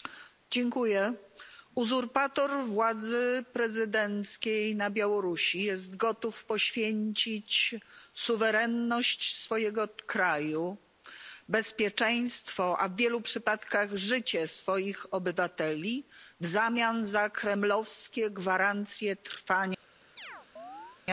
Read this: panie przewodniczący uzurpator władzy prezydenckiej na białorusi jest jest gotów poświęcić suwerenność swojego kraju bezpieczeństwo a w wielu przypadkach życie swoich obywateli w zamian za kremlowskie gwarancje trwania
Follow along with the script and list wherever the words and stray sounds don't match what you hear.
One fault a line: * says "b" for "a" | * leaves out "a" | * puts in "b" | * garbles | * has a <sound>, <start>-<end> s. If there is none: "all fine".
* leaves out "jest"
* has a chirp, 20.2-21.0 s